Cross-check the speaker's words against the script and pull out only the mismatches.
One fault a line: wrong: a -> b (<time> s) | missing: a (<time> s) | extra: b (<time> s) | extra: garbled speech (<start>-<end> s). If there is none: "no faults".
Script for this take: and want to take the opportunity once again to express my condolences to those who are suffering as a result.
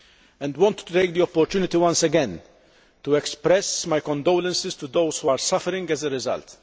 no faults